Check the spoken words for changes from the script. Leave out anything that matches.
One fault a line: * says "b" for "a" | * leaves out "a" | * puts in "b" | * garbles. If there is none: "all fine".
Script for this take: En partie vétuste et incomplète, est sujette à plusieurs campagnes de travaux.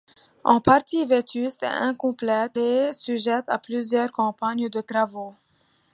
all fine